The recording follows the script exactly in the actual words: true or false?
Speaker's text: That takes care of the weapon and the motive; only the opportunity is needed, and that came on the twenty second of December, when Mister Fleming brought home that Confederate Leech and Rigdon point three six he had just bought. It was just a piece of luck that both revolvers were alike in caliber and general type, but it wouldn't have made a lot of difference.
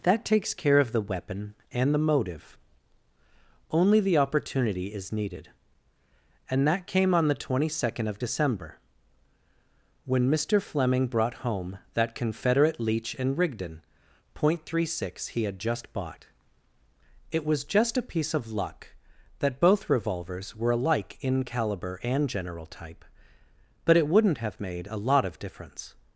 true